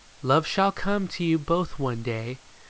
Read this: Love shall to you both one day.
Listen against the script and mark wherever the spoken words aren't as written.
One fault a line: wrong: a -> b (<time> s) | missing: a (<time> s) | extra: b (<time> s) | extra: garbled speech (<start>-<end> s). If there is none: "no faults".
extra: come (0.7 s)